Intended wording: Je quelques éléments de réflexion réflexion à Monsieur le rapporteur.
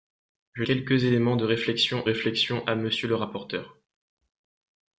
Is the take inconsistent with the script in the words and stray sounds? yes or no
no